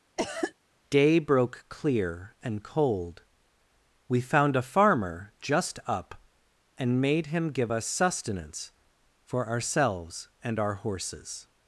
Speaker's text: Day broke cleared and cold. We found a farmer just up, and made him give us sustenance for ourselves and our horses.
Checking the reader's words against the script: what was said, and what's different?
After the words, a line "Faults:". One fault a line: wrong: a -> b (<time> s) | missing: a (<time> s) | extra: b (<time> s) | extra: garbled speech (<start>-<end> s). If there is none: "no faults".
Day broke clear and cold. We found a farmer just up, and made him give us sustenance for ourselves and our horses.
Faults:
wrong: cleared -> clear (1.7 s)